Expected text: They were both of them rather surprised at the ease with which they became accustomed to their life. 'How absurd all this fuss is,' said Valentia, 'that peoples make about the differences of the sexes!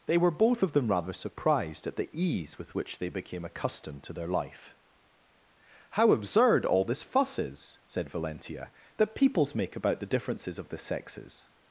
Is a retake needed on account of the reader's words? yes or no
no